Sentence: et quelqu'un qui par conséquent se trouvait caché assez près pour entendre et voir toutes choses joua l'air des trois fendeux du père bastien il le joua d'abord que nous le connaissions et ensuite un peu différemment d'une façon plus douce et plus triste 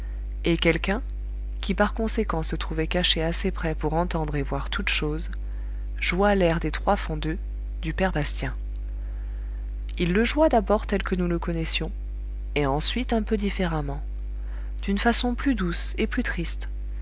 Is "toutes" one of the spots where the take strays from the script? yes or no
no